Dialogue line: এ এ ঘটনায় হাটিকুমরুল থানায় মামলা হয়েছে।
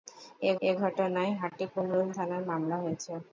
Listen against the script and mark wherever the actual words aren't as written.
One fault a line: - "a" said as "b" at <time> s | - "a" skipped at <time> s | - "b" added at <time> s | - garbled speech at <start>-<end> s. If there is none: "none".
none